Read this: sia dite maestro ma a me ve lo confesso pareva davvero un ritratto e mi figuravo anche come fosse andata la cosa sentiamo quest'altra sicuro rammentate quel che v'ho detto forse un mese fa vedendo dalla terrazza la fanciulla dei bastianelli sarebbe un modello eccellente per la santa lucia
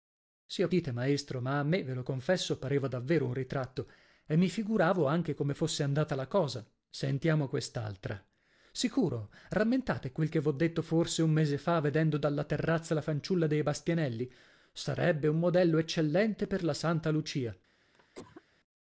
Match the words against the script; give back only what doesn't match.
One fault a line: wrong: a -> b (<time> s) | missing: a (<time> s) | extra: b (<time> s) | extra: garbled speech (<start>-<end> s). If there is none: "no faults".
no faults